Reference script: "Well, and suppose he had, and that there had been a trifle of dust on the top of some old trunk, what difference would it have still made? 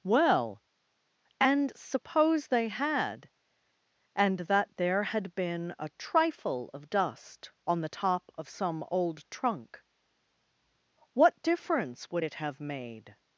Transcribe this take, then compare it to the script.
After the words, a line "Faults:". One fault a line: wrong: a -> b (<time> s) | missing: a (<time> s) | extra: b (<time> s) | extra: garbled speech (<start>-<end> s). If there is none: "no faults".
"Well, and suppose they had, and that there had been a trifle of dust on the top of some old trunk, what difference would it have made?
Faults:
wrong: he -> they (2.5 s)
missing: still (12.6 s)